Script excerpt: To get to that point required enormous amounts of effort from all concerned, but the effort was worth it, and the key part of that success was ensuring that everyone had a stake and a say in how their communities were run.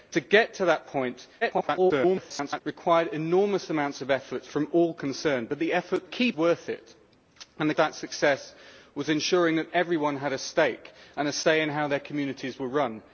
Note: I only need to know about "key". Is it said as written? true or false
false